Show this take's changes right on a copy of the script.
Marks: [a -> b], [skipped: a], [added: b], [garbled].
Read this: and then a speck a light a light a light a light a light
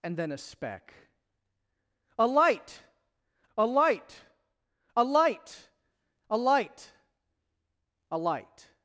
and then a speck a light a light a light a light a light